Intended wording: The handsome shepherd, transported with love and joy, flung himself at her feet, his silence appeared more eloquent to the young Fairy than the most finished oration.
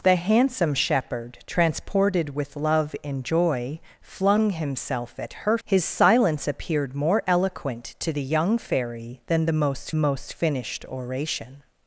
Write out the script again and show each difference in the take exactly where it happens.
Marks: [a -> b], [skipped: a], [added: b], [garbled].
The handsome shepherd, transported with love and joy, flung himself at her [skipped: feet,] his silence appeared more eloquent to the young Fairy than the most [added: most] finished oration.